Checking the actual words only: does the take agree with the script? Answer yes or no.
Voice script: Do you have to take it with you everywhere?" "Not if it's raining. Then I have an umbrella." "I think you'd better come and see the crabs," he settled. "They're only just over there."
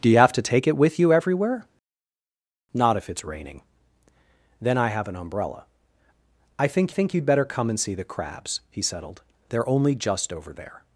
no